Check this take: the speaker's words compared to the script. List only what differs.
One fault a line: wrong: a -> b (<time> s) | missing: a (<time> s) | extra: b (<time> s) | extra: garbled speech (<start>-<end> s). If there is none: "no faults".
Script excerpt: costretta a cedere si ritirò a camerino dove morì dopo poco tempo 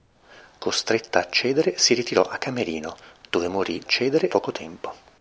wrong: dopo -> cedere (3.9 s)